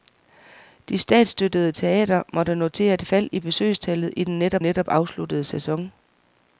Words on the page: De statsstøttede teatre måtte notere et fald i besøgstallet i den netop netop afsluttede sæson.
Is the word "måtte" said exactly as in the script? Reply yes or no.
yes